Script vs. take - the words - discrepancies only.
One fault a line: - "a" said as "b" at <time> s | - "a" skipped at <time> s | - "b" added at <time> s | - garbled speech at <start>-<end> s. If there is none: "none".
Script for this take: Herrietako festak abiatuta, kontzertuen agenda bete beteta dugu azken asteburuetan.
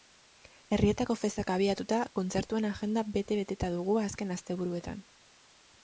none